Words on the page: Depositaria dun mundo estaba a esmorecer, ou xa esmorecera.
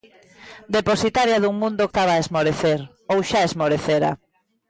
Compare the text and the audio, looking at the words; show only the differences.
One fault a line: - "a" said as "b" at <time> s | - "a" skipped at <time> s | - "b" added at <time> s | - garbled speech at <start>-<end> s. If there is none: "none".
none